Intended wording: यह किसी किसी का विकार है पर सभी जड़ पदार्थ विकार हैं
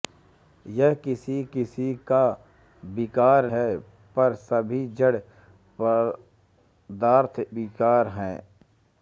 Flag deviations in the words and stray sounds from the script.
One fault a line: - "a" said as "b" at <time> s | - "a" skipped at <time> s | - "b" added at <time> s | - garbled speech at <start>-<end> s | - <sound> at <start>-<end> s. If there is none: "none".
none